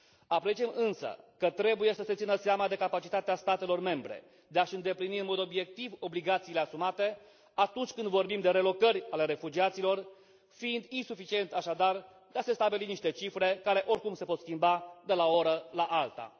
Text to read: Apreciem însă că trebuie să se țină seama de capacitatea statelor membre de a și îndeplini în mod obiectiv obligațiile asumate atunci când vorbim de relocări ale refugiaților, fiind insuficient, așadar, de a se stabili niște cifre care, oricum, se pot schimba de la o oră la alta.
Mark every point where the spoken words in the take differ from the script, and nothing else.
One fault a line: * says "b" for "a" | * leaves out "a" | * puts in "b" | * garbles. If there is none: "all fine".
all fine